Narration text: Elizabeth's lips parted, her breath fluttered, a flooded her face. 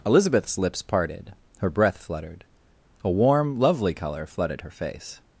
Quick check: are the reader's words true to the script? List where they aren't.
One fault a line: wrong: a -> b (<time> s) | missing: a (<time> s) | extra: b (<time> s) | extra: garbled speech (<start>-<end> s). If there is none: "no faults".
extra: warm lovely color (3.1 s)